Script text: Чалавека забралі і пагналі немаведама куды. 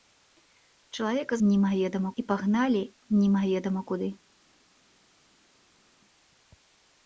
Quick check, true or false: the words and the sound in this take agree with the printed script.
false